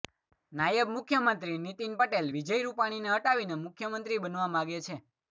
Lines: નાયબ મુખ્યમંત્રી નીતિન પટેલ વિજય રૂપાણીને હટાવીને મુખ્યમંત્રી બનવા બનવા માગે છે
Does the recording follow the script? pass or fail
fail